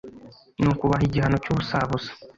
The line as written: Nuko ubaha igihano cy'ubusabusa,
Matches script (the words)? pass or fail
pass